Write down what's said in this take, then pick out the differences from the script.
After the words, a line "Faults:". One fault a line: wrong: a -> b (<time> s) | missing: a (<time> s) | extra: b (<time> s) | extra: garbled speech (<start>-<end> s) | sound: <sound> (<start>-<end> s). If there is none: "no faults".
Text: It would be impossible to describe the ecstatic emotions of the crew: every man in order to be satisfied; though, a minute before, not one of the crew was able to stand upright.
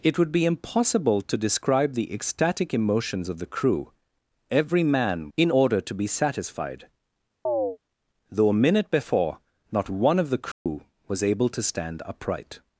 It would be impossible to describe the ecstatic emotions of the crew: every man in order to be satisfied; though, a minute before, not one of the crew was able to stand upright.
Faults:
sound: chirp (7.5-7.8 s)
sound: dropout (10.5-10.7 s)